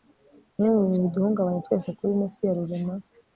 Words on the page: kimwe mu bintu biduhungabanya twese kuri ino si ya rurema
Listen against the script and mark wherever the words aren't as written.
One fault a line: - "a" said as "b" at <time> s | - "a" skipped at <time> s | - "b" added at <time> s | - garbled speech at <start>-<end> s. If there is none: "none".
none